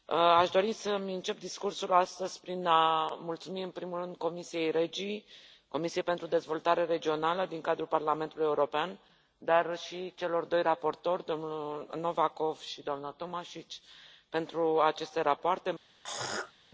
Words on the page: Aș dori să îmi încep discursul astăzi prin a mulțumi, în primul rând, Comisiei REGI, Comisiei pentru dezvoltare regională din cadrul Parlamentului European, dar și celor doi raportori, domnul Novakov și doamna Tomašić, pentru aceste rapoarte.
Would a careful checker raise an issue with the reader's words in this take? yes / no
no